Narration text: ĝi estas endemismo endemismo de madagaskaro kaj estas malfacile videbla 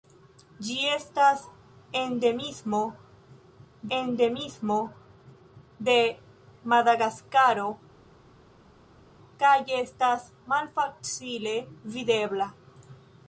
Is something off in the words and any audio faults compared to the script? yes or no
no